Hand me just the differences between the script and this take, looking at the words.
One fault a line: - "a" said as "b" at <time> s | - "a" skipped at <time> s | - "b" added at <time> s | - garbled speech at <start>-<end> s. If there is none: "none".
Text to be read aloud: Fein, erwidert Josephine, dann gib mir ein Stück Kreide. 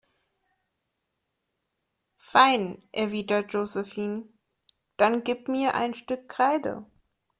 none